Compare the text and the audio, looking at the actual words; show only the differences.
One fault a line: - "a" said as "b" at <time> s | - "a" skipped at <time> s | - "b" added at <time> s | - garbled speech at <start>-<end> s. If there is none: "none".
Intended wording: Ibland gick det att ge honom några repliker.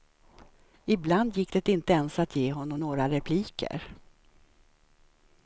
- "inte ens" added at 1.7 s